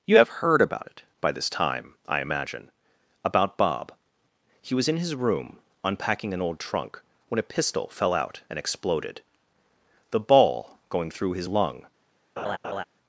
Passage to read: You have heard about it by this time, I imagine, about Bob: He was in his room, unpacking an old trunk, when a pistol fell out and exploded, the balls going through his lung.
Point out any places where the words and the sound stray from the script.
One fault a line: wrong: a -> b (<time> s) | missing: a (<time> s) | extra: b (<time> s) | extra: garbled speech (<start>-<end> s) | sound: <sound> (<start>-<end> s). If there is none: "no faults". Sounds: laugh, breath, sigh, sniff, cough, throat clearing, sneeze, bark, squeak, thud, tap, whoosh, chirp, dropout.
wrong: balls -> ball (10.2 s)
sound: laugh (12.4-12.8 s)